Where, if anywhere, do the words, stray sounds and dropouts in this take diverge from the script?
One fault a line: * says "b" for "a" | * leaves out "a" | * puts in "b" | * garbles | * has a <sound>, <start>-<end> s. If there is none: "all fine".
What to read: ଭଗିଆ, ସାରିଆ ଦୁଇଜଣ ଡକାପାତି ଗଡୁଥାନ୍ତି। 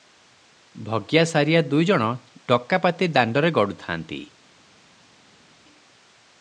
* puts in "ଦାଣ୍ତରେ"